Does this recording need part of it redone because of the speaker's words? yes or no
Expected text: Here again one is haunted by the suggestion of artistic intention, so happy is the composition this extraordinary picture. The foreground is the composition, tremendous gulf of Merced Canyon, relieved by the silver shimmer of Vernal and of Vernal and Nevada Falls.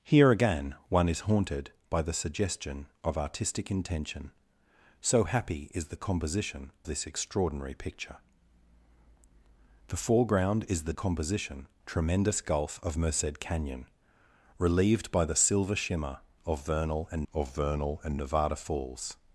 no